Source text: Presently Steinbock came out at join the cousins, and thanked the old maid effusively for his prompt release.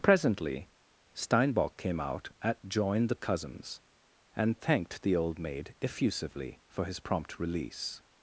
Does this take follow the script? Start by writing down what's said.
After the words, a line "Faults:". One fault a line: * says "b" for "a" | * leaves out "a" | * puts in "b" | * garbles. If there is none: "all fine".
Presently Steinbock came out at join the cousins, and thanked the old maid effusively for his prompt release.
Faults:
all fine